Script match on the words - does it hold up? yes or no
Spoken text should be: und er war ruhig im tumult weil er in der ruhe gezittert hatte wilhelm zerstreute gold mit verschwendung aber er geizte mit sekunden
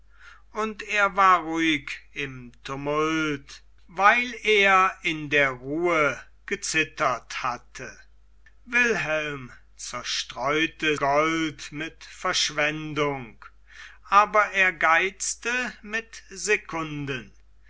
yes